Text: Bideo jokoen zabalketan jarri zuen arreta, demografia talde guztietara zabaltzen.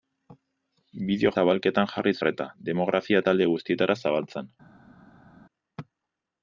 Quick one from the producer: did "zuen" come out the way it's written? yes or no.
no